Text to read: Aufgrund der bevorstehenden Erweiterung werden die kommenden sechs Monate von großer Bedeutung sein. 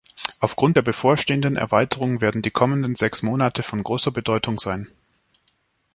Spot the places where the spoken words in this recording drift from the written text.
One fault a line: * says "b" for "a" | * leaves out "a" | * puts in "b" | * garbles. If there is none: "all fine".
all fine